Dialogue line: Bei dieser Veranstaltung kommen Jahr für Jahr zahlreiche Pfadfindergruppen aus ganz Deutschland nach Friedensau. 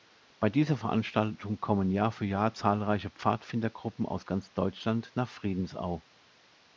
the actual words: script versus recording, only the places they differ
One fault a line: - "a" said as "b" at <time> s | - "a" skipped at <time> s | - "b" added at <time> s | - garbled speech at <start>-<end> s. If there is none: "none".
none